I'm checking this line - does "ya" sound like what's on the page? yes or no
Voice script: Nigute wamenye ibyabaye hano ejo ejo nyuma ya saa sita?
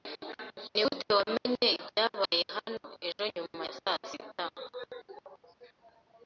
yes